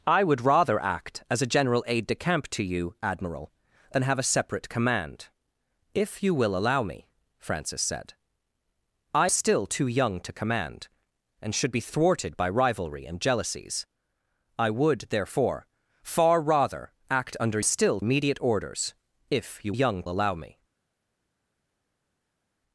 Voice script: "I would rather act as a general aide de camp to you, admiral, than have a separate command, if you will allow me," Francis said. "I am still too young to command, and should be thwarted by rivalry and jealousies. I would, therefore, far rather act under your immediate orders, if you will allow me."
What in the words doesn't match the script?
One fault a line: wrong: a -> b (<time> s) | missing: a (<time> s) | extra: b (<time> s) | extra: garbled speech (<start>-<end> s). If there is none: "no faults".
missing: am (9.3 s)
wrong: your -> still (17.6 s)
wrong: will -> young (19.7 s)